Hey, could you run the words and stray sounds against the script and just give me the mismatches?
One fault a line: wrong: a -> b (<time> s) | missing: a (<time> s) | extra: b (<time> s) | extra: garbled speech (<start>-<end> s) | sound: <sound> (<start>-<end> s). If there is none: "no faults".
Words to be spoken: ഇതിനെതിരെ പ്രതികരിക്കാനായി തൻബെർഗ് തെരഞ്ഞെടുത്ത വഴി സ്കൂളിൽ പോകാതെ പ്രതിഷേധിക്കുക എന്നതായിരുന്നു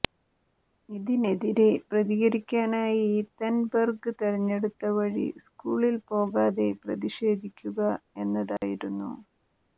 sound: dropout (8.6-8.6 s)